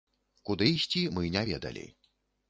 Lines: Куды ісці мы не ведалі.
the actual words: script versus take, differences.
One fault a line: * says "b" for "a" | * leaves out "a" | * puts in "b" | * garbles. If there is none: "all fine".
all fine